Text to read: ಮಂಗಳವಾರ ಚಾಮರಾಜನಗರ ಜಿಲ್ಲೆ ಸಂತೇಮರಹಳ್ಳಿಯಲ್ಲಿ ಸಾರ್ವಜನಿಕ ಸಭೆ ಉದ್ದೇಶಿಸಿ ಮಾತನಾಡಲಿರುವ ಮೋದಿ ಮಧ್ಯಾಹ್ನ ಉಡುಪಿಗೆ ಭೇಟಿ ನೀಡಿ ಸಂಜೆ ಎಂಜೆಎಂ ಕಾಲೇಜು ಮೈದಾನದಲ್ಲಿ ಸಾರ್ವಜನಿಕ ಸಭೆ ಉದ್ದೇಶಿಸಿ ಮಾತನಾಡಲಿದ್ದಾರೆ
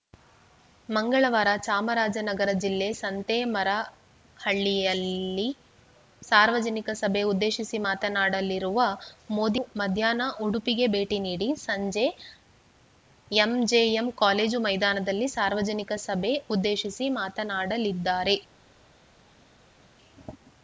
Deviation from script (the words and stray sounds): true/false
false